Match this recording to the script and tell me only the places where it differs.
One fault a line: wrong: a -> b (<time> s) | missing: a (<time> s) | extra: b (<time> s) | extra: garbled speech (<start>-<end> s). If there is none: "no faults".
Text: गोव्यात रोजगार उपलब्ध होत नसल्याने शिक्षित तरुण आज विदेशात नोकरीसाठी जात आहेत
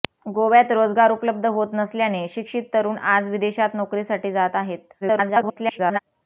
extra: garbled speech (5.0-6.0 s)